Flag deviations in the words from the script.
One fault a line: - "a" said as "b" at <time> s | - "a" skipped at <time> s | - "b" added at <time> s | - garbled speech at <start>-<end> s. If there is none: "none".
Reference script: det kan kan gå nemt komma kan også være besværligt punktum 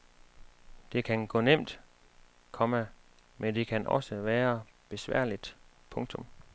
- "kan" skipped at 1.3 s
- "men det" added at 3.4 s